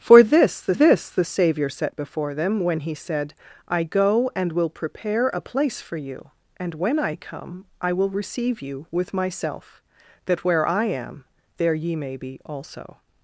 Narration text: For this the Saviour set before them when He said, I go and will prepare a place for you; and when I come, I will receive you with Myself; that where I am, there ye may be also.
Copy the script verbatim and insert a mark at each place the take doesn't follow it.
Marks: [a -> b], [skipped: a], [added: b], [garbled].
For this the [added: this the] Saviour set before them when He said, I go and will prepare a place for you; and when I come, I will receive you with Myself; that where I am, there ye may be also.